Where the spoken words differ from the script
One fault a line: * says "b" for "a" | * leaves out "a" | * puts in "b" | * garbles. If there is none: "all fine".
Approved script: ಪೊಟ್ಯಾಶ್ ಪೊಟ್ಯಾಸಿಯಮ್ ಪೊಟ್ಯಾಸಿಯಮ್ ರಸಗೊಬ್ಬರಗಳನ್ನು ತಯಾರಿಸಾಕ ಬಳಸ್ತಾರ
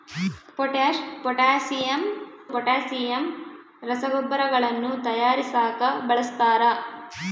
all fine